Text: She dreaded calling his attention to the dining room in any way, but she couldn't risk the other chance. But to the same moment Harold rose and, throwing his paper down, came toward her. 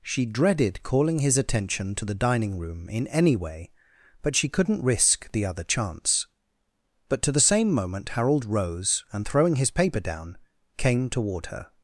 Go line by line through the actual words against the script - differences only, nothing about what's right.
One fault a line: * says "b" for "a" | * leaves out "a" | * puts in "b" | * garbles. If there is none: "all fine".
all fine